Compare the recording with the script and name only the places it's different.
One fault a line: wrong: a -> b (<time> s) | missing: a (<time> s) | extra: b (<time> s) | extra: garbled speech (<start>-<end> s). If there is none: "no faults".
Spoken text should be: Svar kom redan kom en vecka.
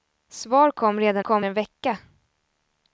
no faults